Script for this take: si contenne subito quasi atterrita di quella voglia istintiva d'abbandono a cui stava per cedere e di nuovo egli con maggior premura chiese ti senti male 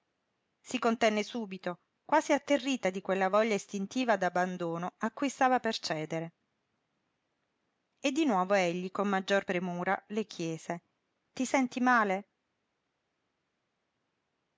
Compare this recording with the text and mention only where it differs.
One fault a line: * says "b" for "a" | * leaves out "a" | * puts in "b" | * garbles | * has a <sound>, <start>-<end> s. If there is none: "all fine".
* puts in "le"